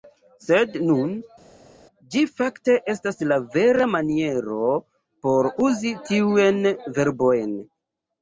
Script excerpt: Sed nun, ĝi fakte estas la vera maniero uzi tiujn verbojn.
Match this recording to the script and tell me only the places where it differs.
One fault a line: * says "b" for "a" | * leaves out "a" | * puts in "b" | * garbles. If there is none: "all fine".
* puts in "por"